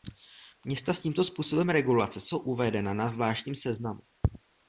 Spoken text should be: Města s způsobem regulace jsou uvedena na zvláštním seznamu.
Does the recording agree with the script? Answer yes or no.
no